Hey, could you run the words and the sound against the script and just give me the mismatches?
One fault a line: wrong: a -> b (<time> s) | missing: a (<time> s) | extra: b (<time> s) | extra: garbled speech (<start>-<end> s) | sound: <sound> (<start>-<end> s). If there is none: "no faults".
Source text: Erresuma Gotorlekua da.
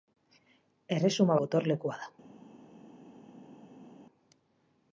no faults